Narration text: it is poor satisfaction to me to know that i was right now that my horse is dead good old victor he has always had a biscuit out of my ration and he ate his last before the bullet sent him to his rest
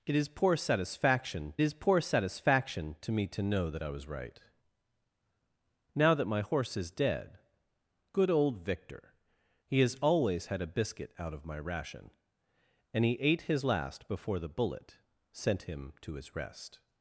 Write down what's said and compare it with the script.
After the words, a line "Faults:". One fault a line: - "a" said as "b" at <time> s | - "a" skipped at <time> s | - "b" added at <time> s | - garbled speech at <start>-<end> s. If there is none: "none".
it is poor satisfaction is poor satisfaction to me to know that i was right now that my horse is dead good old victor he has always had a biscuit out of my ration and he ate his last before the bullet sent him to his rest
Faults:
- "is poor satisfaction" added at 1.6 s